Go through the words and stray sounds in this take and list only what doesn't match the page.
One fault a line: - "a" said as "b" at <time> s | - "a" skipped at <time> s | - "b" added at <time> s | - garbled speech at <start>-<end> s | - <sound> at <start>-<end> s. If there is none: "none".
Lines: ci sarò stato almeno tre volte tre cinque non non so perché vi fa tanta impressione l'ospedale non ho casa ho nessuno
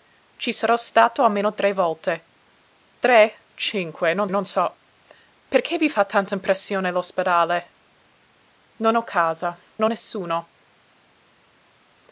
none